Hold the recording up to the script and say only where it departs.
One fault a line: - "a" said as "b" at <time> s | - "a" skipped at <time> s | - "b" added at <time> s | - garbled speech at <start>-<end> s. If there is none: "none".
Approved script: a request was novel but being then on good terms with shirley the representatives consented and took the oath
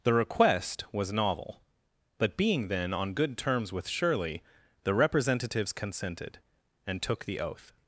- "a" said as "the" at 0.0 s